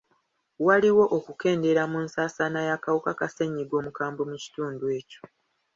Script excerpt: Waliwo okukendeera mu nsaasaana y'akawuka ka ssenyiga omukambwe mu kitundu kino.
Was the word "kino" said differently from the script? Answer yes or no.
yes